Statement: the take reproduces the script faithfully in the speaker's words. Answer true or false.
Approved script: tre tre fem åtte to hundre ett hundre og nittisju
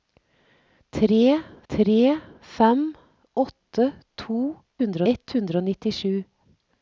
true